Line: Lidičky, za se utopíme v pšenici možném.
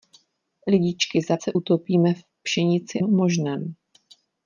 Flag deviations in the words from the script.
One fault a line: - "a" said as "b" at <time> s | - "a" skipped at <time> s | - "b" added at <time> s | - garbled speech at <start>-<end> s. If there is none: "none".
none